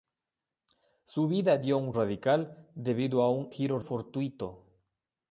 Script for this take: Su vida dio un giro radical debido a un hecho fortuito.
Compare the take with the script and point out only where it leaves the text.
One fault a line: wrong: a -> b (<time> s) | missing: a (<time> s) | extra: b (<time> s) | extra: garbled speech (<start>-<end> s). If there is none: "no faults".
missing: giro (1.9 s)
wrong: hecho -> giro (3.5 s)